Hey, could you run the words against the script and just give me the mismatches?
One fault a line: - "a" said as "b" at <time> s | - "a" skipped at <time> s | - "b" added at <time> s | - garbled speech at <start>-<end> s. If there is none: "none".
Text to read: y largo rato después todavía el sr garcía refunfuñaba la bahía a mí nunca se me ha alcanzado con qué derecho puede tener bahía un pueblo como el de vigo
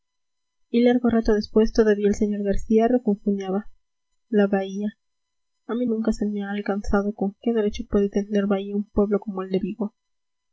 none